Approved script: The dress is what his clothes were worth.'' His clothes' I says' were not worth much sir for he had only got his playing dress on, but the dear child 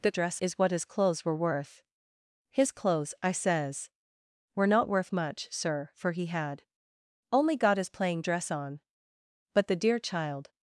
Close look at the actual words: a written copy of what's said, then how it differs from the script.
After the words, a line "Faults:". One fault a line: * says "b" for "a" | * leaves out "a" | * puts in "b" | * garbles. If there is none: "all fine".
The dress is what his clothes were worth.'' His clothes' I says' were not worth much sir for he had only got his playing dress on, but the dear child
Faults:
all fine